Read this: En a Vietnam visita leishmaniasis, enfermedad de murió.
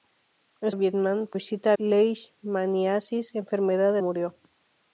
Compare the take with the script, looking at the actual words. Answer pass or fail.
pass